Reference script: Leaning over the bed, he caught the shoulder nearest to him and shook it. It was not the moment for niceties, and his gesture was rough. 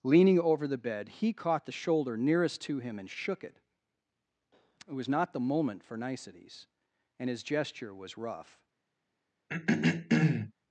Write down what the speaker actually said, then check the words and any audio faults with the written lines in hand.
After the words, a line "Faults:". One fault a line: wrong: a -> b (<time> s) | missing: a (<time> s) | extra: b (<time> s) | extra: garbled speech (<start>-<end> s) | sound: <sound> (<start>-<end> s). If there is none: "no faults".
Leaning over the bed, he caught the shoulder nearest to him and shook it. It was not the moment for niceties, and his gesture was rough.
Faults:
sound: throat clearing (9.5-10.5 s)